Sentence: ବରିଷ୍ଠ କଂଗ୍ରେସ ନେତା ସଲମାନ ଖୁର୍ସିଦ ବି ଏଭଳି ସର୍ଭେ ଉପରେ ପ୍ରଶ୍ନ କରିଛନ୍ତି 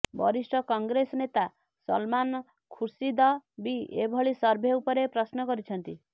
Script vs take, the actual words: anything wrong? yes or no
no